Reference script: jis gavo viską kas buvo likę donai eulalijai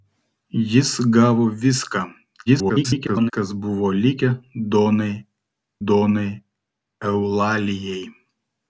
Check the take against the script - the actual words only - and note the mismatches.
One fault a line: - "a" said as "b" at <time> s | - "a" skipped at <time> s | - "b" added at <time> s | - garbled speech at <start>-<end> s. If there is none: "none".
- garbled speech at 2.5-3.3 s
- "donai" added at 5.9 s